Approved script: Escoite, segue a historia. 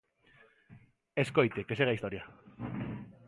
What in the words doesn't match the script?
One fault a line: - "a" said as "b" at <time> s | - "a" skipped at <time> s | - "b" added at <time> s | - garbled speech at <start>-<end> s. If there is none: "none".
- "que" added at 1.6 s